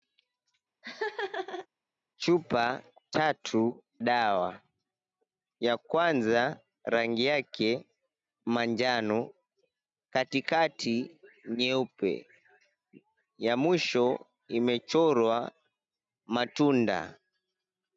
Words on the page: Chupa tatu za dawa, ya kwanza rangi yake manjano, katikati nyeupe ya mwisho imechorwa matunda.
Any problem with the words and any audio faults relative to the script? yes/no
yes